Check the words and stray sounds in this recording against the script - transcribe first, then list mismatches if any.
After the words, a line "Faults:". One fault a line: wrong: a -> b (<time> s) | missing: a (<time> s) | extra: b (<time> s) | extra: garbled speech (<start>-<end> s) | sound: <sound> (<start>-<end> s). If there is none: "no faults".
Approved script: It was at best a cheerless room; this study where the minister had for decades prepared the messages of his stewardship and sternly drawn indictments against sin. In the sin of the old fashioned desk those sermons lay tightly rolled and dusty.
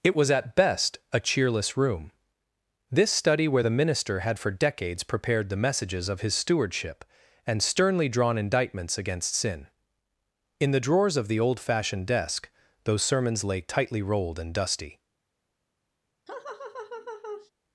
It was at best a cheerless room; this study where the minister had for decades prepared the messages of his stewardship and sternly drawn indictments against sin. In the drawers of the old fashioned desk those sermons lay tightly rolled and dusty.
Faults:
wrong: sin -> drawers (10.8 s)
sound: laugh (16.3-17.5 s)